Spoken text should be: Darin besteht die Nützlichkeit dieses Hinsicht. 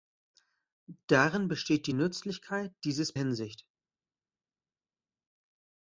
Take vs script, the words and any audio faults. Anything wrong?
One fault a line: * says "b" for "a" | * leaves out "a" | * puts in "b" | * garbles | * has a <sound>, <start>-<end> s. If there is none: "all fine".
all fine